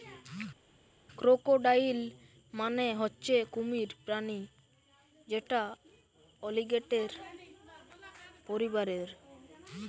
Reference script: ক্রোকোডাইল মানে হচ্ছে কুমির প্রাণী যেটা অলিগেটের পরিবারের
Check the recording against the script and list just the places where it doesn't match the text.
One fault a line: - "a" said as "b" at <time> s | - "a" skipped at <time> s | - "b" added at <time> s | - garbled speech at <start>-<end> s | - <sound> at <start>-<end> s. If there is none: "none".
none